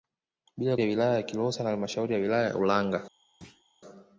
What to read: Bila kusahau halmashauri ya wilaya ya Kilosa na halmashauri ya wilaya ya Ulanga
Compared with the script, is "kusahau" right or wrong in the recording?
wrong